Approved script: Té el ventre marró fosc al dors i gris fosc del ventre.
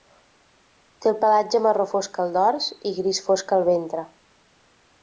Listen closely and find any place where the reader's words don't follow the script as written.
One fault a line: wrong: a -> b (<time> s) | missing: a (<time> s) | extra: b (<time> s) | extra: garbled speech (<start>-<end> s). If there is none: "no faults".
wrong: ventre -> pelatge (1.2 s)
wrong: del -> al (3.6 s)